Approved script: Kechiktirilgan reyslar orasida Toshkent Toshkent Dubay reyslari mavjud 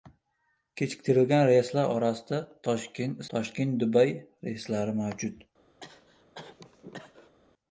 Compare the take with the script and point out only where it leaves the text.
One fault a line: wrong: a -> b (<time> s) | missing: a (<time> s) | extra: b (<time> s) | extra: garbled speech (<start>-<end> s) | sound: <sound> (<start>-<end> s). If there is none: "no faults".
sound: cough (5.8-7.4 s)